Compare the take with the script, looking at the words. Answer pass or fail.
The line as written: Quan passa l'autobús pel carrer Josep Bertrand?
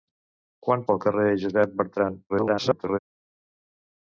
fail